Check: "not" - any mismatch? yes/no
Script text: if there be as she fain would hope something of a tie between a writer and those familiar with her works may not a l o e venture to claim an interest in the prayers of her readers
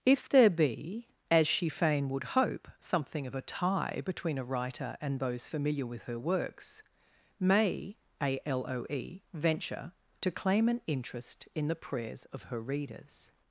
yes